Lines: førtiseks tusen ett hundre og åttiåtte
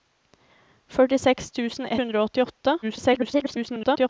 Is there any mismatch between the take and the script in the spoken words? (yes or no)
yes